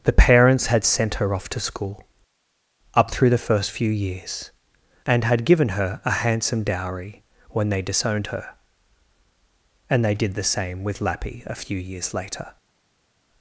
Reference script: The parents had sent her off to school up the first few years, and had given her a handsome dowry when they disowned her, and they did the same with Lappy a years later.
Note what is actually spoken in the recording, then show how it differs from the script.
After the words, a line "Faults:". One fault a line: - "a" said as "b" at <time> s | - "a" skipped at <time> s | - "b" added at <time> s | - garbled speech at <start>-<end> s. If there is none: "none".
The parents had sent her off to school up through the first few years, and had given her a handsome dowry when they disowned her, and they did the same with Lappy a few years later.
Faults:
- "through" added at 3.1 s
- "few" added at 11.6 s